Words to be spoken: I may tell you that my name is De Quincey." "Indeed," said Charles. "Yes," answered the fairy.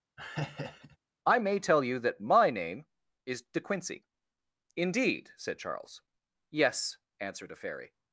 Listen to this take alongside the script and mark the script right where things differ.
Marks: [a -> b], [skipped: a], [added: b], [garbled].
I may tell you that my name is De Quincey." "Indeed," said Charles. "Yes," answered [the -> a] fairy.